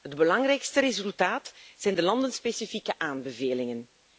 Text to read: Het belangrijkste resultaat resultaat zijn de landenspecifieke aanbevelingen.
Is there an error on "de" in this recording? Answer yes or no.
no